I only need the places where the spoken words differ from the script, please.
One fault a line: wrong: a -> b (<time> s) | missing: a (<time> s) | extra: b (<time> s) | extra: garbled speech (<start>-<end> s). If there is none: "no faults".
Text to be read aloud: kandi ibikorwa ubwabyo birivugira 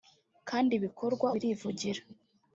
missing: ubwabyo (1.3 s)